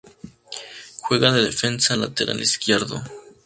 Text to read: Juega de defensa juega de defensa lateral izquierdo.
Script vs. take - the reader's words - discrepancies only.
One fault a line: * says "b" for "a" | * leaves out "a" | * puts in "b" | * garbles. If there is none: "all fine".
* leaves out "juega de defensa"